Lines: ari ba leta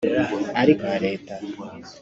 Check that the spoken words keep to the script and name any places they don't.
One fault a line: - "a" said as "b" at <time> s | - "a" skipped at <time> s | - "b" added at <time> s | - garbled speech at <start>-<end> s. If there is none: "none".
none